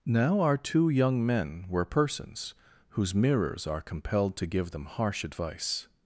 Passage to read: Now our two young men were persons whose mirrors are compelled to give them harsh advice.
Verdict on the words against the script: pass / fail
pass